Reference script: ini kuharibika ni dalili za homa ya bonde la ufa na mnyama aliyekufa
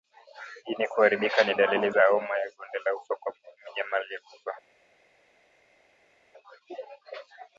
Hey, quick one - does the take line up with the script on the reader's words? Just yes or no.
no